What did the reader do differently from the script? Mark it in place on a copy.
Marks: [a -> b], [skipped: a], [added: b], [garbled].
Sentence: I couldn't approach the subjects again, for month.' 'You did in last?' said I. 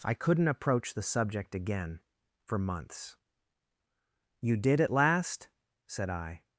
I couldn't approach the [subjects -> subject] again, for [month.' -> months] 'You did [in -> at] last?' said I.